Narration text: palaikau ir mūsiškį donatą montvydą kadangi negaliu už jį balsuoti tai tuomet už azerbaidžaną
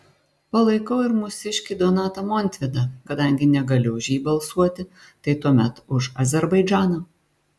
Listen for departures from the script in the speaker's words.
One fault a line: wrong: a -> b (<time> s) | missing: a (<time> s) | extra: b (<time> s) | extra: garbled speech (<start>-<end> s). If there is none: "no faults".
no faults